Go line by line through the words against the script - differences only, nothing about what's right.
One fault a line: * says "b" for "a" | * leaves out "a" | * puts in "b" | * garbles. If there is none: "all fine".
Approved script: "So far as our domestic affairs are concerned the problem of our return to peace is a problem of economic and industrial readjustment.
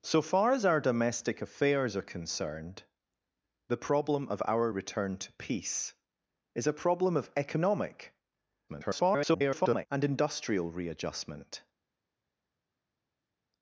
* garbles